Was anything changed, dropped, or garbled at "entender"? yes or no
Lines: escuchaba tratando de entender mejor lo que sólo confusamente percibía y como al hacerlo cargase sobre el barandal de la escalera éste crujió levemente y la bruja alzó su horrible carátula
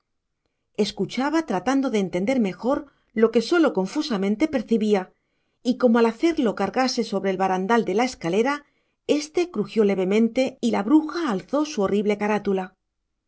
no